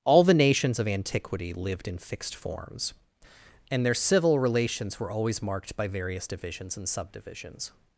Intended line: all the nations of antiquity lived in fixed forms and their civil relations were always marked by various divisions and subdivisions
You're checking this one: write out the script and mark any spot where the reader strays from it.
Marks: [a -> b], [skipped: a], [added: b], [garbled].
all the nations of antiquity lived in fixed forms and their civil relations were always marked by various divisions and subdivisions